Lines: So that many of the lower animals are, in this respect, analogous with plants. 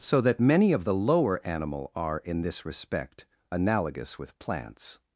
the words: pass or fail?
fail